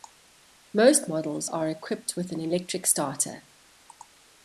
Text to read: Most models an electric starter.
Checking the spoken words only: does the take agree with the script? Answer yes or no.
no